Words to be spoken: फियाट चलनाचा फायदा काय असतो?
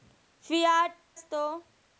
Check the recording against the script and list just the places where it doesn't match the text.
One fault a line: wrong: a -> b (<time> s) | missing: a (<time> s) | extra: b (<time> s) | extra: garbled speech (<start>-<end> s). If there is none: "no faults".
missing: चलनाचा फायदा काय (0.9 s)